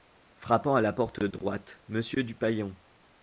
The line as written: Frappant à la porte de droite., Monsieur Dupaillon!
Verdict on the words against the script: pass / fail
pass